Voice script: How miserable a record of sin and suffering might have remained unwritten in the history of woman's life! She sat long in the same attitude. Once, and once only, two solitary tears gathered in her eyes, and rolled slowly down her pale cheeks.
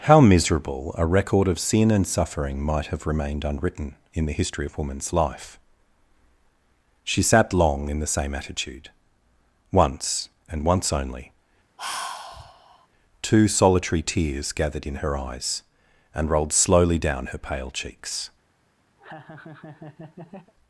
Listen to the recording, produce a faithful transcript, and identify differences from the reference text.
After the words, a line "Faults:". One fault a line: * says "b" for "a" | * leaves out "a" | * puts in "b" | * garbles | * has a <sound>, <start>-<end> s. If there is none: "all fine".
How miserable a record of sin and suffering might have remained unwritten in the history of woman's life! She sat long in the same attitude. Once, and once only, two solitary tears gathered in her eyes, and rolled slowly down her pale cheeks.
Faults:
* has a sigh, 11.8-12.9 s
* has a laugh, 19.0-20.5 s